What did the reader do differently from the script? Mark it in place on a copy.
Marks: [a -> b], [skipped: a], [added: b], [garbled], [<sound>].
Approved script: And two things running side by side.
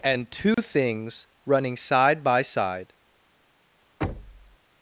And two [dropout] things running side by side. [thud]